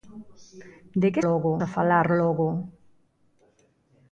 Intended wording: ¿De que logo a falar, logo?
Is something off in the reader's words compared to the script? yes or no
no